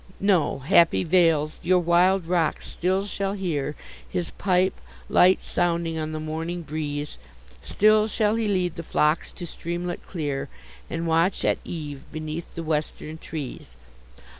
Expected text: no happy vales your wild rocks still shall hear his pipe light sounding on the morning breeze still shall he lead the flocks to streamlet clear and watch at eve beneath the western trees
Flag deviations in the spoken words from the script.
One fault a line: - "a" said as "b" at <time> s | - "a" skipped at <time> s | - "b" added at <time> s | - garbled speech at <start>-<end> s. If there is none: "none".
none